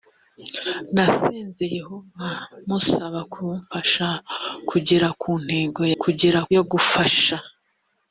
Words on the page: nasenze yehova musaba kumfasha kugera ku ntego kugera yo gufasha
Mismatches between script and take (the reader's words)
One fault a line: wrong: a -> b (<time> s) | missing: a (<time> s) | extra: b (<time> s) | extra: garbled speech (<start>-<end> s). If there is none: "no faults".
no faults